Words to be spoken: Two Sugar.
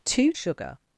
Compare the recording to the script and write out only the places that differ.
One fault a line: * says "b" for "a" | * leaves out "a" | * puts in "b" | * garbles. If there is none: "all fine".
all fine